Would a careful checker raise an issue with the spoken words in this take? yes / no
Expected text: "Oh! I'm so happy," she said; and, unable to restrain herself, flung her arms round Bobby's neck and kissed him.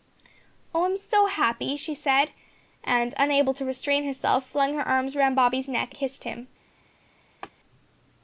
yes